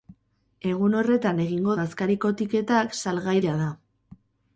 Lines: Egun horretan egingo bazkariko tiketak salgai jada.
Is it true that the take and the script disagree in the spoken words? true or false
false